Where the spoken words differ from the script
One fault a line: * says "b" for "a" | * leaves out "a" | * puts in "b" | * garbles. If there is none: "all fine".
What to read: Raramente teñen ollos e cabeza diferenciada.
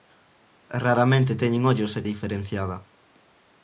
* leaves out "cabeza"